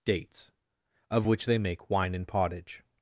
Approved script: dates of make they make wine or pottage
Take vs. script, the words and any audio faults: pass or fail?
fail